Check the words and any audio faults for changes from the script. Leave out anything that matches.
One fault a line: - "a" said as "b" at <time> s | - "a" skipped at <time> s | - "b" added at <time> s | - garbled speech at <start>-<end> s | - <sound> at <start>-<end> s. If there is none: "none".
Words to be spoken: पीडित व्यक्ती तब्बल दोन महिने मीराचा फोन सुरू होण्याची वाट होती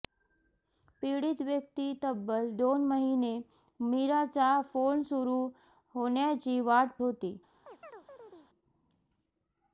- chirp at 7.6-8.5 s